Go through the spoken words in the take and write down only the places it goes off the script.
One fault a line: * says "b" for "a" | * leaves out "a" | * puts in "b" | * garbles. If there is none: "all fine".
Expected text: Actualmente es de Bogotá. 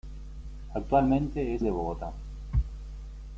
all fine